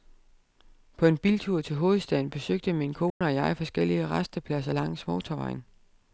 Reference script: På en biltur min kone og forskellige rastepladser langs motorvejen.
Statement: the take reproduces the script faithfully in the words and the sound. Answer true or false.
false